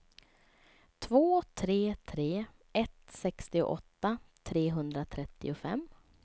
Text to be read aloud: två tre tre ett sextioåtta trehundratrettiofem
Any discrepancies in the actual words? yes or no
no